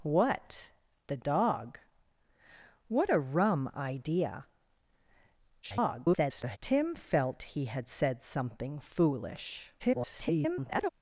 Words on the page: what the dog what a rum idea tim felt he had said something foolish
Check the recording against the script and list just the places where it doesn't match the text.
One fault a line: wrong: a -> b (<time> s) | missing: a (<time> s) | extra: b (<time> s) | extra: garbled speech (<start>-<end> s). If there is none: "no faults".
extra: garbled speech (5.6-6.6 s)
extra: garbled speech (9.8-10.9 s)